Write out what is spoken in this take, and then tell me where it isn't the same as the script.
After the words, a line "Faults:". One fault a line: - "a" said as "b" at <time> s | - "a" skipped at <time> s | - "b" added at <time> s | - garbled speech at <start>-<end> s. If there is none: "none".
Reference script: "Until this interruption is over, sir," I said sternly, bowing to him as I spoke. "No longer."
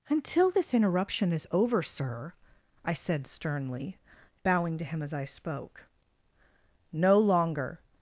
"Until this interruption is over, sir," I said sternly, bowing to him as I spoke. "No longer."
Faults:
none